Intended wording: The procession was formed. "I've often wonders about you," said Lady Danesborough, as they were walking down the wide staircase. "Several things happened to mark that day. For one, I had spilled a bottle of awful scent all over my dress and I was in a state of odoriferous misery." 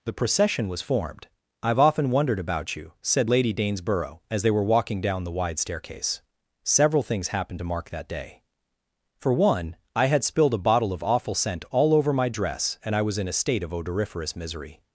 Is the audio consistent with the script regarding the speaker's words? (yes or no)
no